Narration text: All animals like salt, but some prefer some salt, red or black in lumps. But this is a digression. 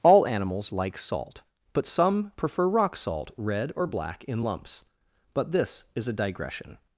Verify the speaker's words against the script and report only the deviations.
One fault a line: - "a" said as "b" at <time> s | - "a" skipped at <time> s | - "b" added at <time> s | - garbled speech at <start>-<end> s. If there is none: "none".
- "some" said as "rock" at 2.7 s